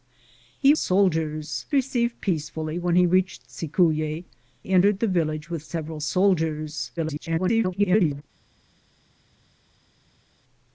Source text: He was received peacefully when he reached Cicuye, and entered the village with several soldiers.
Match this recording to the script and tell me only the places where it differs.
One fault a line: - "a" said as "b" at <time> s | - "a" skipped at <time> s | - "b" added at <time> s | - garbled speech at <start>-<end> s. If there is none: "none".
- "was" said as "soldiers" at 0.7 s
- "and" skipped at 4.3 s
- garbled speech at 7.0-8.2 s